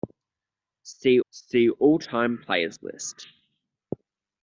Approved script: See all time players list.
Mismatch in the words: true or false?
true